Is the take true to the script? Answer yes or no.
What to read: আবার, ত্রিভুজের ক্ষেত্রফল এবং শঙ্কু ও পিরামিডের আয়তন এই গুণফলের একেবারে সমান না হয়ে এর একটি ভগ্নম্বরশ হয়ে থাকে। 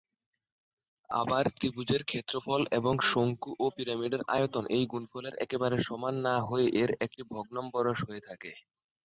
yes